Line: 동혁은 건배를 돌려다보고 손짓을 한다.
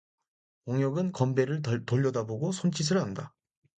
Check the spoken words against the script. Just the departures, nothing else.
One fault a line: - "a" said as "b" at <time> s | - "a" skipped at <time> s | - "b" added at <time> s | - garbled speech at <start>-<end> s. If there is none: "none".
none